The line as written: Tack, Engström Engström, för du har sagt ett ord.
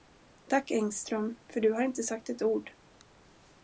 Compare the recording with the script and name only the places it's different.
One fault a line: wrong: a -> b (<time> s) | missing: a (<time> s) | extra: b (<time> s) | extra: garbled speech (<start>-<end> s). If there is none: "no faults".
missing: Engström (1.4 s)
extra: inte (1.8 s)